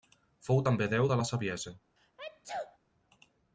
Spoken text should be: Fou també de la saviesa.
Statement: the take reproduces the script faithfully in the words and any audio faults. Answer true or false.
false